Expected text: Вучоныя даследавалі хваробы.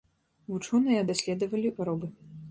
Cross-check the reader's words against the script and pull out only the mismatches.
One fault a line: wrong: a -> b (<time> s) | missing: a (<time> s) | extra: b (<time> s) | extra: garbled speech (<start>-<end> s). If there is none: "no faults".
no faults